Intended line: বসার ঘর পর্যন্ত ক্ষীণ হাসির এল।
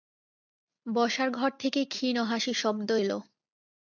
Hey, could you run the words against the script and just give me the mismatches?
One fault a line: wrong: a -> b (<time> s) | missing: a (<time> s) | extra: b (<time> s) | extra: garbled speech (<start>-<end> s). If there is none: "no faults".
wrong: পর্যন্ত -> থেকে (1.6 s)
extra: শব্দ (2.6 s)